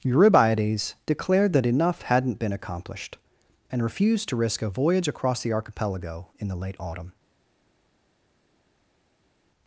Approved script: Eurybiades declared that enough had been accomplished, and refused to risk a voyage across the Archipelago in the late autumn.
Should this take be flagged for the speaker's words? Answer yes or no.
yes